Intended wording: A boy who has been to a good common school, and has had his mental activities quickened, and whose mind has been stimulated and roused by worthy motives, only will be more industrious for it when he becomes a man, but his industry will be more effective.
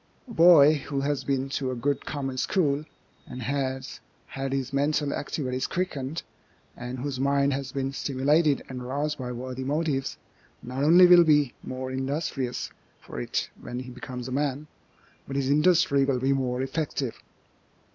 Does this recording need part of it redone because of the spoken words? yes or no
yes